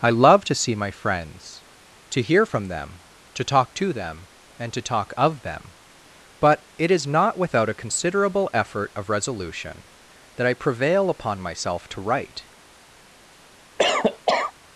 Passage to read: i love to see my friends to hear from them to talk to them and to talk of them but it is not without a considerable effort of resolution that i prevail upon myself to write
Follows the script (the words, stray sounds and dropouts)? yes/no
no